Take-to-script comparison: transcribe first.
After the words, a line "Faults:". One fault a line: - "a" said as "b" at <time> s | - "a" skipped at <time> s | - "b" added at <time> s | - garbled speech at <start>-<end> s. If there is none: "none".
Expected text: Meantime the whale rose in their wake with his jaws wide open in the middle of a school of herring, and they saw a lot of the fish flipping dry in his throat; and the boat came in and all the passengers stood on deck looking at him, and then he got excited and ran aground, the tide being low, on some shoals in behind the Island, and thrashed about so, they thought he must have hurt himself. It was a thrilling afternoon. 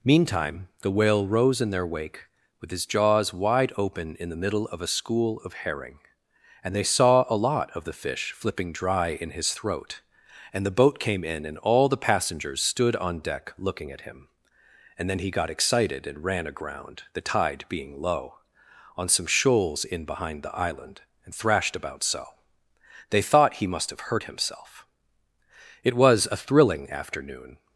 Meantime the whale rose in their wake with his jaws wide open in the middle of a school of herring, and they saw a lot of the fish flipping dry in his throat; and the boat came in and all the passengers stood on deck looking at him, and then he got excited and ran aground, the tide being low, on some shoals in behind the Island, and thrashed about so, they thought he must have hurt himself. It was a thrilling afternoon.
Faults:
none